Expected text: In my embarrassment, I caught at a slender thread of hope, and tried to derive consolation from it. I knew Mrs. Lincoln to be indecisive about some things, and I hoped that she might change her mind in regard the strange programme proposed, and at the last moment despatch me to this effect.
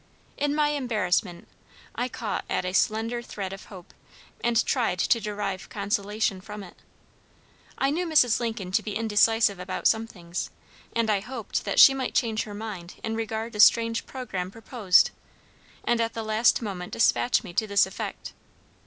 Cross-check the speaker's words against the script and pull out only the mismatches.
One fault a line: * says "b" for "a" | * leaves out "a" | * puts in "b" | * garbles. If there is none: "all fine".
all fine